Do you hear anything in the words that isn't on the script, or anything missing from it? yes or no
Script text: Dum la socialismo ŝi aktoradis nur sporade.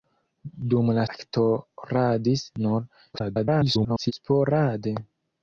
yes